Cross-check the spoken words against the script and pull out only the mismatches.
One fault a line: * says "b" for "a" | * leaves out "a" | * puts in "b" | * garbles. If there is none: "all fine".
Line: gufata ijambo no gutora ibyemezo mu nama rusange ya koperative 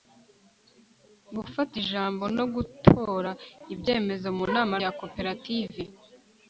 * leaves out "rusange"